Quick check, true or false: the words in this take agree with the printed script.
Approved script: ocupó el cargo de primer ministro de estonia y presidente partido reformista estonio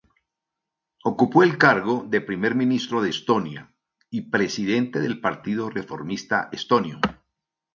false